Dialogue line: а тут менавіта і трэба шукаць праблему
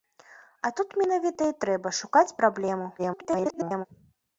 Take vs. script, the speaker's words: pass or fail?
fail